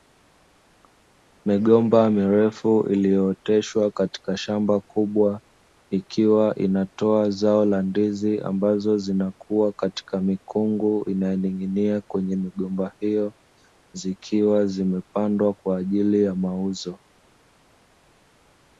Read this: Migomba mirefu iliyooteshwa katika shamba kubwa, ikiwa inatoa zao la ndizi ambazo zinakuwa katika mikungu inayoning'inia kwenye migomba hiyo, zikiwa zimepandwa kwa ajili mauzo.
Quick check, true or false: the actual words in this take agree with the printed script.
false